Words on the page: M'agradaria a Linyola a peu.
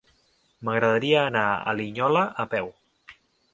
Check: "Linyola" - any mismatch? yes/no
no